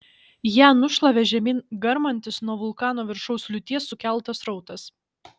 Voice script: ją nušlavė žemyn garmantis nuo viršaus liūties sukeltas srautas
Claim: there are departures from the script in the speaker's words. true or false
true